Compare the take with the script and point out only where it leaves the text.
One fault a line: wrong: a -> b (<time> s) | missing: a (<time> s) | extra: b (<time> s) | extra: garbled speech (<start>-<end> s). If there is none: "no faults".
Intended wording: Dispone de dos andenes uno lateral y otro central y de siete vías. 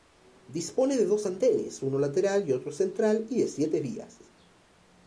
no faults